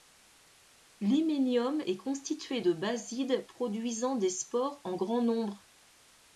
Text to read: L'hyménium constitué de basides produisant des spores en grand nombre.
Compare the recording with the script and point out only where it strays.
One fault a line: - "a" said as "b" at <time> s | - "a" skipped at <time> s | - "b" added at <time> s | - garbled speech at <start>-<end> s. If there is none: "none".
- "est" added at 1.8 s